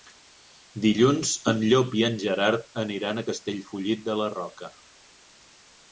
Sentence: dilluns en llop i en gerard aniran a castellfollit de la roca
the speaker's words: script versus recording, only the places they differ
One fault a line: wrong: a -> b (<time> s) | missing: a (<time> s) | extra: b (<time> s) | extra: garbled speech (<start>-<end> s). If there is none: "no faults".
no faults